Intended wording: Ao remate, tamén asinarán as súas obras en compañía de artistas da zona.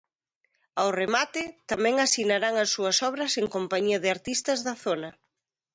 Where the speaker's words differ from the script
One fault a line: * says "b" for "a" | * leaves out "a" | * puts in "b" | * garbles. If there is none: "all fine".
all fine